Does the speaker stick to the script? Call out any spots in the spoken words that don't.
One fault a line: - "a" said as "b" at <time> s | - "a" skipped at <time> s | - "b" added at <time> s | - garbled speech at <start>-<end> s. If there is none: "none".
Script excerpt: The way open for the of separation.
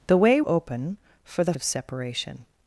none